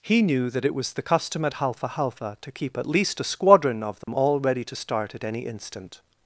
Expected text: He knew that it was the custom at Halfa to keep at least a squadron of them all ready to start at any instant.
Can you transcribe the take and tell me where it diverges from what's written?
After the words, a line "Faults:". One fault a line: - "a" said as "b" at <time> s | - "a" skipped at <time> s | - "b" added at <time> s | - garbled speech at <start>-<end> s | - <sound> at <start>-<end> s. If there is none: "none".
He knew that it was the custom at Halfa Halfa to keep at least a squadron of them all ready to start at any instant.
Faults:
- "Halfa" added at 1.9 s
- dropout at 4.0-4.1 s